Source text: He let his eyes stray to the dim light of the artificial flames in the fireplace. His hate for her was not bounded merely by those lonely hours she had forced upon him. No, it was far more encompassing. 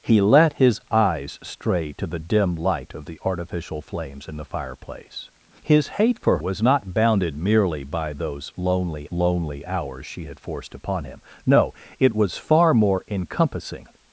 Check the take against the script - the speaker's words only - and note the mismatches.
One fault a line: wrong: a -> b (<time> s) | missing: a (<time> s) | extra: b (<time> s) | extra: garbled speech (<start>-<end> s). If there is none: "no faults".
missing: her (6.4 s)
extra: lonely (9.1 s)